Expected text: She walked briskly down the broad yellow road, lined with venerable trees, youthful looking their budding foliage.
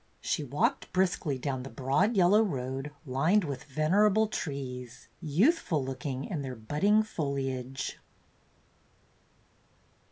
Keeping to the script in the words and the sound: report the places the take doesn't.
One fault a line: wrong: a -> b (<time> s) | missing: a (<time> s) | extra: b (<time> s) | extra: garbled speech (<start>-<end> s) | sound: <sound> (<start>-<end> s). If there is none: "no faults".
extra: in (6.2 s)